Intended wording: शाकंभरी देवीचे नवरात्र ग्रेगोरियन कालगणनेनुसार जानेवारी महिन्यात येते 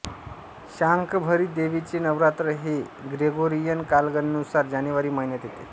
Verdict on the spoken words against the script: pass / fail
fail